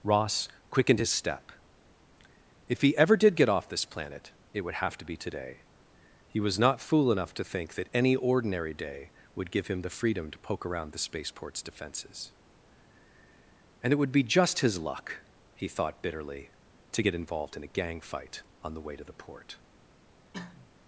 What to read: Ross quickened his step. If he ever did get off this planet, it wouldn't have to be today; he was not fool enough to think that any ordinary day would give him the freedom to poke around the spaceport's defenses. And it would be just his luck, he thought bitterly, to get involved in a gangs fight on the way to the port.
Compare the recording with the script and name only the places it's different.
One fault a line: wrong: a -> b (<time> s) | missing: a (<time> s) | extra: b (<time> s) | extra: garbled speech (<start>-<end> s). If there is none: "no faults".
wrong: wouldn't -> would (4.6 s)
wrong: gangs -> gang (17.7 s)